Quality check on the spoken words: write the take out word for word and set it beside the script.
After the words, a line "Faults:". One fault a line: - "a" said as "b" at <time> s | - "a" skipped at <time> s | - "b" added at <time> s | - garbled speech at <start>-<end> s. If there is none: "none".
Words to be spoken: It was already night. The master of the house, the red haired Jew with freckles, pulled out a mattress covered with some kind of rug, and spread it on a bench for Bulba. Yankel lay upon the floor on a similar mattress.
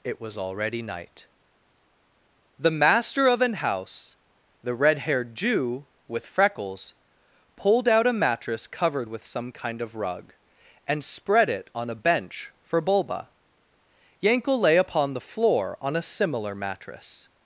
It was already night. The master of an house, the red haired Jew with freckles, pulled out a mattress covered with some kind of rug, and spread it on a bench for Bulba. Yankel lay upon the floor on a similar mattress.
Faults:
- "the" said as "an" at 3.4 s